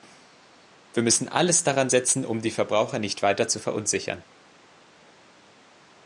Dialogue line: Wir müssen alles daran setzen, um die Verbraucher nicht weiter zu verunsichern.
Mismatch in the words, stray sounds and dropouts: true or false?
false